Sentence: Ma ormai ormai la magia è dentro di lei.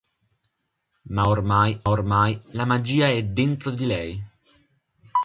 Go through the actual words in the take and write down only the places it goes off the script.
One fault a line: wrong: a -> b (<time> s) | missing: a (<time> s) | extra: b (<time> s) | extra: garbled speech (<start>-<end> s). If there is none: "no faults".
no faults